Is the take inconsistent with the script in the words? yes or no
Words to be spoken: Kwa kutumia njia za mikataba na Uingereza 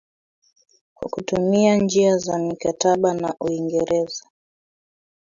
no